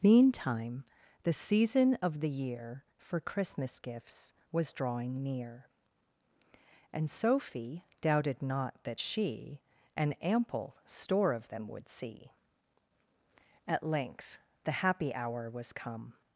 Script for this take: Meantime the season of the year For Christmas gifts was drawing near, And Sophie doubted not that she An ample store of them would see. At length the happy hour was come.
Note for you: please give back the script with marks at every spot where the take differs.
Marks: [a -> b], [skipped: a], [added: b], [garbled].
Meantime the season of the year For Christmas gifts was drawing near, And Sophie doubted not that she An ample store of them would see. At length the happy hour was come.